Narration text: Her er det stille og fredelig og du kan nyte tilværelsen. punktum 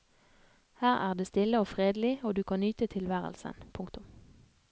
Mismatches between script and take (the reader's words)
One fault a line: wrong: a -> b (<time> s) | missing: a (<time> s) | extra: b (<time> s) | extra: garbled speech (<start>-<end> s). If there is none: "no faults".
no faults